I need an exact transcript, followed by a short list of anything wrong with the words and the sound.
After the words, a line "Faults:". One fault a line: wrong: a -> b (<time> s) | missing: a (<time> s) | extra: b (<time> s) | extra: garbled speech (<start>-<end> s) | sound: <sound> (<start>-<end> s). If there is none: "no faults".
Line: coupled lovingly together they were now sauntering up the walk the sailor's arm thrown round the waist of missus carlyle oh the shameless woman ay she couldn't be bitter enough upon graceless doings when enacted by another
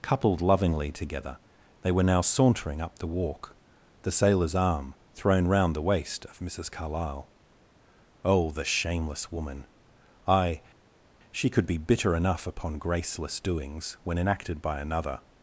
coupled lovingly together they were now sauntering up the walk the sailor's arm thrown round the waist of missus carlyle oh the shameless woman ay she could be bitter enough upon graceless doings when enacted by another
Faults:
wrong: couldn't -> could (11.5 s)